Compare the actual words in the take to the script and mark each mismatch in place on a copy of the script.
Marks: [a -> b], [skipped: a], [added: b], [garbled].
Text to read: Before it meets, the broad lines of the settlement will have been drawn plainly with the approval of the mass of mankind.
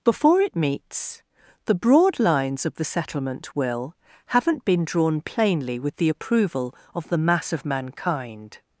Before it meets, the broad lines of the settlement will [have -> haven't] been drawn plainly with the approval of the mass of mankind.